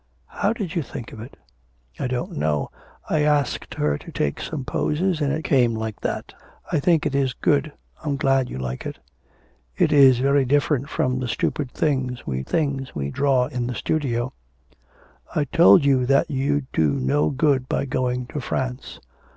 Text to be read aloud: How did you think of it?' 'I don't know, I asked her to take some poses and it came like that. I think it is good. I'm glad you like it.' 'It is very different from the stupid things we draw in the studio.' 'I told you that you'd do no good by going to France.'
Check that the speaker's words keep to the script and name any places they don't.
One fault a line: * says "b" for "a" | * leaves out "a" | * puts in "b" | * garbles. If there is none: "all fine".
* puts in "things we"